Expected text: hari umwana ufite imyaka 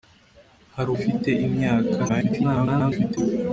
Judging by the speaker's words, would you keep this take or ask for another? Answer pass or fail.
fail